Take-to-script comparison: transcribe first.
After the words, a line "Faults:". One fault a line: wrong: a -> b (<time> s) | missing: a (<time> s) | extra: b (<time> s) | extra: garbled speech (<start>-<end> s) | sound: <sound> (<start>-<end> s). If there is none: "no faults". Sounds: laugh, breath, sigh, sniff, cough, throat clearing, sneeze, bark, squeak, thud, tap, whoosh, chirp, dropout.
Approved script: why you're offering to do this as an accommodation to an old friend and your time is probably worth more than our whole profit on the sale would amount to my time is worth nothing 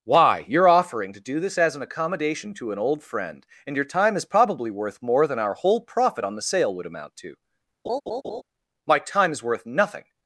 why you're offering to do this as an accommodation to an old friend and your time is probably worth more than our whole profit on the sale would amount to my time is worth nothing
Faults:
sound: laugh (7.8-8.4 s)